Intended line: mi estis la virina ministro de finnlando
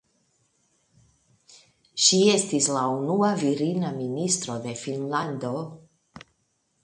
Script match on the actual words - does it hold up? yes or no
no